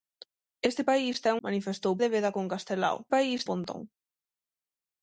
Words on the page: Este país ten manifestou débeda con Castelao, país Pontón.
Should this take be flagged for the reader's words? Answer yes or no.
no